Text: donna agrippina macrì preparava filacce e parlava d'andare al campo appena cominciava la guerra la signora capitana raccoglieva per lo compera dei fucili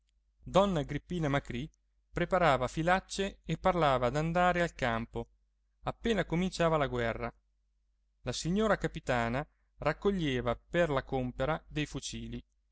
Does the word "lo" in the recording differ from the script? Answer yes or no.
yes